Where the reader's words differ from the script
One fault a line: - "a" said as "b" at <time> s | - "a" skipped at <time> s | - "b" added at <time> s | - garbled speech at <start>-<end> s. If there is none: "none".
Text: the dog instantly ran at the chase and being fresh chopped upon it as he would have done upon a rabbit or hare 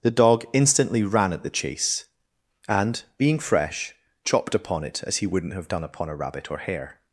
- "would" said as "wouldn't" at 5.3 s